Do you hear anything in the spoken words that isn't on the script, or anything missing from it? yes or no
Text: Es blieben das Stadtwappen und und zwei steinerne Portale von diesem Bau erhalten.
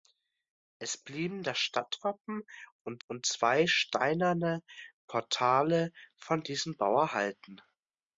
no